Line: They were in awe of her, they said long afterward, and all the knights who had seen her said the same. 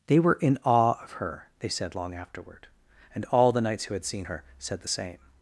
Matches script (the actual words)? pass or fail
pass